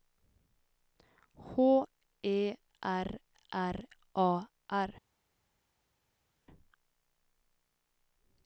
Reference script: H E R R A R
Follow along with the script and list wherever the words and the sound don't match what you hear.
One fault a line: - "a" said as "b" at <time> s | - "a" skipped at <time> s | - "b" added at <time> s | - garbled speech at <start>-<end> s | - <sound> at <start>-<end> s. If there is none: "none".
none